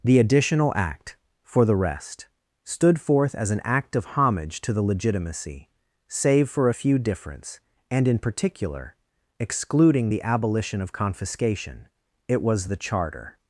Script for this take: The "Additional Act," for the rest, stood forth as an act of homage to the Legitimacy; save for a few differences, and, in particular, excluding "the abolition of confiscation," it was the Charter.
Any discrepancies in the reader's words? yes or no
yes